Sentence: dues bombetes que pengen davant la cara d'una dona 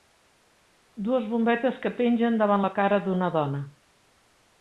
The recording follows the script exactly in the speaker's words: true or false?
true